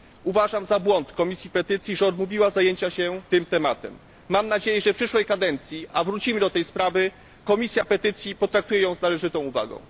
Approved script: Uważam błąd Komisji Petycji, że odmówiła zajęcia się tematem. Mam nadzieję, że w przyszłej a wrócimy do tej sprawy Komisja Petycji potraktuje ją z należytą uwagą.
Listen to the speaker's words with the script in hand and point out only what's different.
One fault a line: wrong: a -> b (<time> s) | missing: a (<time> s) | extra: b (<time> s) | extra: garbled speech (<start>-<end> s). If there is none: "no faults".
extra: za (0.7 s)
extra: tym (3.3 s)
extra: kadencji (5.2 s)